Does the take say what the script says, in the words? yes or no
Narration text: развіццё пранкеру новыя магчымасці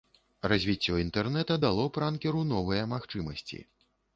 no